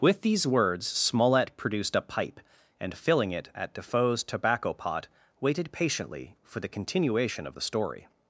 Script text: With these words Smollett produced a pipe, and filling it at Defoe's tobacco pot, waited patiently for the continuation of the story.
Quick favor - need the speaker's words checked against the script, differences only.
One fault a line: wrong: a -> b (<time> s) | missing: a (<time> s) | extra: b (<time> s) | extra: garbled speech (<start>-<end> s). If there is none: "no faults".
no faults